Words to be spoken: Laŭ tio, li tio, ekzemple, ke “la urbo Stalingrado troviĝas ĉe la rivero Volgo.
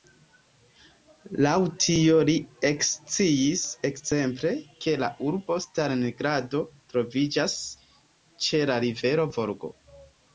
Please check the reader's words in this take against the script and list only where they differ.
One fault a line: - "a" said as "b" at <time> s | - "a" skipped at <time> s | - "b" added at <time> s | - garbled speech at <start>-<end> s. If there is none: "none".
- "tio" said as "eksciis" at 2.7 s